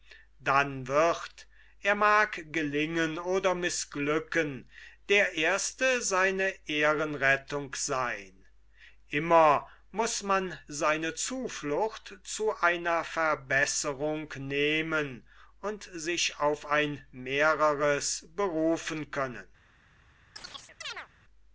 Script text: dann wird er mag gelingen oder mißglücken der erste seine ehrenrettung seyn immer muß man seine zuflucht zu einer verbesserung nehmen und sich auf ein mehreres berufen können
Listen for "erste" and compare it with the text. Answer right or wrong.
right